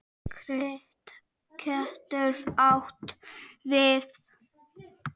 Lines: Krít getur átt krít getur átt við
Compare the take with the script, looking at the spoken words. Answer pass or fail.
fail